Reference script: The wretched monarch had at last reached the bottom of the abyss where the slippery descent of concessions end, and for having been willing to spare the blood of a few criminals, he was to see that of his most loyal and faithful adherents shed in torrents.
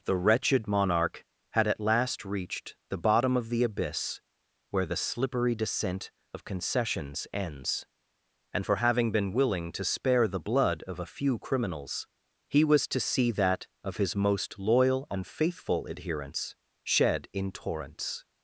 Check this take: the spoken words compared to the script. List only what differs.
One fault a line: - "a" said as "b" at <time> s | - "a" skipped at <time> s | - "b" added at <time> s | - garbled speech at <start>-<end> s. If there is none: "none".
- "end" said as "ends" at 7.3 s